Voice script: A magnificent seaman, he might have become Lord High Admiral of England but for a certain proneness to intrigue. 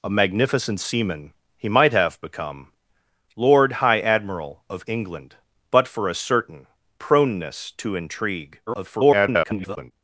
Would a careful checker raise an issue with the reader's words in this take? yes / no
yes